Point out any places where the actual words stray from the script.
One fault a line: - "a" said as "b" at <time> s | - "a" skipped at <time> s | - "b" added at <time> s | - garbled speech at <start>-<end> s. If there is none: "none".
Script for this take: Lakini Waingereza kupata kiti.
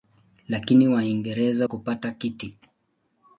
none